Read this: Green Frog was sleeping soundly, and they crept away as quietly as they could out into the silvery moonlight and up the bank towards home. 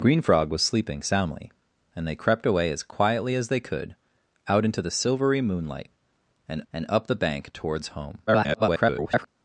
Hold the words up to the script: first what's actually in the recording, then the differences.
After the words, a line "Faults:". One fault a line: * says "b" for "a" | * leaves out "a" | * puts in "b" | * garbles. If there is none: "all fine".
Green Frog was sleeping soundly, and they crept away as quietly as they could out into the silvery moonlight and and up the bank towards home. [garbled]
Faults:
* puts in "and"
* garbles